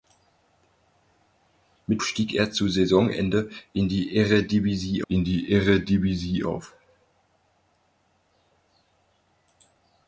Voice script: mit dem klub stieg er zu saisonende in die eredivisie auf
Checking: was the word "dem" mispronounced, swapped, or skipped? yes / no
yes